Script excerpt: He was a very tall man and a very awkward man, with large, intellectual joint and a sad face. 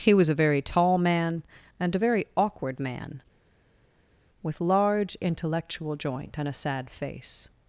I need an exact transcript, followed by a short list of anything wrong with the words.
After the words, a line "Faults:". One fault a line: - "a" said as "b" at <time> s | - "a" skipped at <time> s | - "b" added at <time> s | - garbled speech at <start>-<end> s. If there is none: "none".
He was a very tall man and a very awkward man, with large, intellectual joint and a sad face.
Faults:
none